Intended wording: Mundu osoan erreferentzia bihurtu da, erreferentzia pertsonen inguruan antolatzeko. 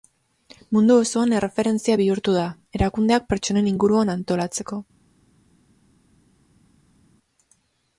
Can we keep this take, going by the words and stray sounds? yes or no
no